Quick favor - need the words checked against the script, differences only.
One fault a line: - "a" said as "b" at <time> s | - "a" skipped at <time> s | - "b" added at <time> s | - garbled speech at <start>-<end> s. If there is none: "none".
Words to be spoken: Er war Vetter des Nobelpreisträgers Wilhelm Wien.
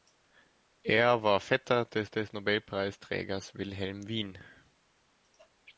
- "des" added at 2.1 s